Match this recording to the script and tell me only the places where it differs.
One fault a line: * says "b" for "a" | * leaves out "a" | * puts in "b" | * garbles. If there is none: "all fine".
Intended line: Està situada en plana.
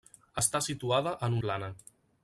all fine